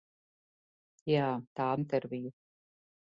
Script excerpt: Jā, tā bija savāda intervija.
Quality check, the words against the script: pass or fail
fail